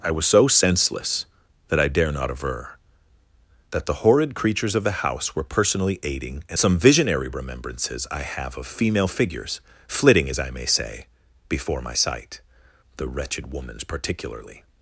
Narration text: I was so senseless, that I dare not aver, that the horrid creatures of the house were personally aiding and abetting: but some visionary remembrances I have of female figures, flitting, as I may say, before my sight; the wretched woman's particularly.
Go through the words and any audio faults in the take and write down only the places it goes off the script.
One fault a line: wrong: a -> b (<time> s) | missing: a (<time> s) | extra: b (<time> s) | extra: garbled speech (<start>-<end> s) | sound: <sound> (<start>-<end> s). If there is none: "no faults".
missing: abetting but (6.6 s)